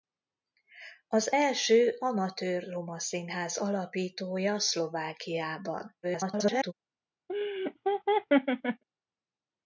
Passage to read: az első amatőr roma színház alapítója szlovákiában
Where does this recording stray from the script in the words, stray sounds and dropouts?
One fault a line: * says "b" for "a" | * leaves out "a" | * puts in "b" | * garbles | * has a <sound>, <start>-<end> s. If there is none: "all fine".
* garbles
* has a laugh, 7.3-8.8 s